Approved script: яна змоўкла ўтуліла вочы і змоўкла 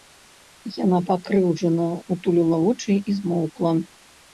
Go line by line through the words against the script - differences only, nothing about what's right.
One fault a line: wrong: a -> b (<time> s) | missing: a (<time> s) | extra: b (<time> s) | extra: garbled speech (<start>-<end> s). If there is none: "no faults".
wrong: змоўкла -> пакрыўджана (1.1 s)